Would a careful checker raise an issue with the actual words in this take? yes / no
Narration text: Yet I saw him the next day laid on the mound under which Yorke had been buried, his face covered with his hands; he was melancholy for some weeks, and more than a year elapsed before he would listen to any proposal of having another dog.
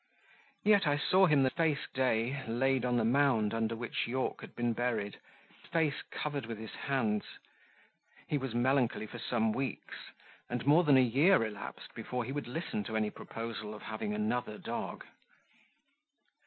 yes